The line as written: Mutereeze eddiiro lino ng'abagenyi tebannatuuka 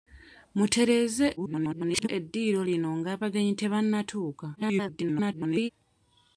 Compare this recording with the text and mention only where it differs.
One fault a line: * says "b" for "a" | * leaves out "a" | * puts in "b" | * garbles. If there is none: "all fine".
* garbles
* garbles